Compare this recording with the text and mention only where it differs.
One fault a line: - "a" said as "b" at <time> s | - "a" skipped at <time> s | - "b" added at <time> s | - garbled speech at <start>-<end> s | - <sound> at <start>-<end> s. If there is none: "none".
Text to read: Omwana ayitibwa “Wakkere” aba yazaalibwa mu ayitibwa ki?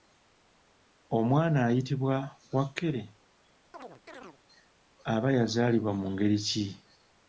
- chirp at 3.7-4.4 s
- "ayitibwa" said as "ngeri" at 6.1 s